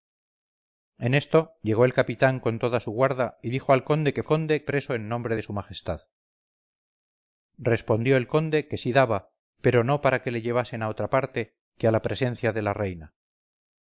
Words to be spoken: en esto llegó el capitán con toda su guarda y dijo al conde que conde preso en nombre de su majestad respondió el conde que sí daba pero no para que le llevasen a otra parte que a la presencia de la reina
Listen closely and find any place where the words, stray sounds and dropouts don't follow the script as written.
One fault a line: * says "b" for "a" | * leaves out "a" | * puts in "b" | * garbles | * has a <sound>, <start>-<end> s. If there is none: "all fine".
all fine